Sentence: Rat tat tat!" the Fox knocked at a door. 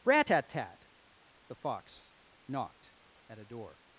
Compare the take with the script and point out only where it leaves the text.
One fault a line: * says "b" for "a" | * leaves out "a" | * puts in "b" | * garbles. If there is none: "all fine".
all fine